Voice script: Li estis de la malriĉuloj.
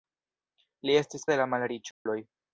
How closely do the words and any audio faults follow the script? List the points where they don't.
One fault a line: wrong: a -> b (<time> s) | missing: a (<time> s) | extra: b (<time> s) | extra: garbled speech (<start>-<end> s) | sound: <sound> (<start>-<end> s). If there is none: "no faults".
sound: dropout (1.9-2.1 s)